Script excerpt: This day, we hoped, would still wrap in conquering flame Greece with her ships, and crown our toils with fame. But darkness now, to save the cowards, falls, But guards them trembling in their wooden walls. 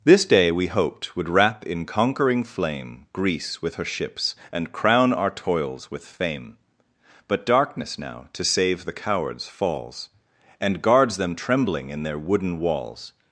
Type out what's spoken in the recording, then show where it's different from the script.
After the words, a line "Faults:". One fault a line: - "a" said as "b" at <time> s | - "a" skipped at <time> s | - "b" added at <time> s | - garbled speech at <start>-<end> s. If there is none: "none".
This day, we hoped, would wrap in conquering flame Greece with her ships, and crown our toils with fame. But darkness now, to save the cowards, falls, And guards them trembling in their wooden walls.
Faults:
- "still" skipped at 1.3 s
- "But" said as "And" at 10.6 s